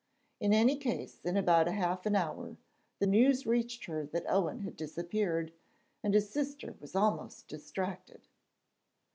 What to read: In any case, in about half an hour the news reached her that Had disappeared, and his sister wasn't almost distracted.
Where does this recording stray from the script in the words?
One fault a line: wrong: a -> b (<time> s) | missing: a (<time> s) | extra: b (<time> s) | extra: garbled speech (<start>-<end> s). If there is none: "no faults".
extra: Owen (4.3 s)
wrong: wasn't -> was (6.8 s)